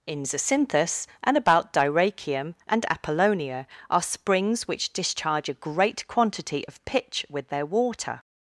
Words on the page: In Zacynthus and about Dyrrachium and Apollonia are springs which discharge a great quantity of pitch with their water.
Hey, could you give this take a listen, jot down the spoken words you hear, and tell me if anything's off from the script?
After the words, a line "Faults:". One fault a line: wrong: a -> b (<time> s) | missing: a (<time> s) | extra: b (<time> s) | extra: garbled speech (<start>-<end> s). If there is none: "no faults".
In Zacynthus and about Dyrrachium and Apollonia are springs which discharge a great quantity of pitch with their water.
Faults:
no faults